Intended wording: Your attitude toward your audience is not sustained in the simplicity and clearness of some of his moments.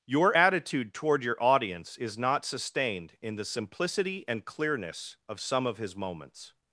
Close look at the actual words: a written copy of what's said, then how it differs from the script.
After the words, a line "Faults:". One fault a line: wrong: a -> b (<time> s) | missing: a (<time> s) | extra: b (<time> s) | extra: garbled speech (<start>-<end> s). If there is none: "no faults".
Your attitude toward your audience is not sustained in the simplicity and clearness of some of his moments.
Faults:
no faults